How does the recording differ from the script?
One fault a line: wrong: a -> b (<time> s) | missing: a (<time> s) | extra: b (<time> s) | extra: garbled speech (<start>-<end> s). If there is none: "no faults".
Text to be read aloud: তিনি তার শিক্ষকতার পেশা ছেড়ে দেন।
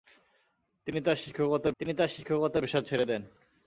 extra: তিনি তার শিক্ষকতার (1.8 s)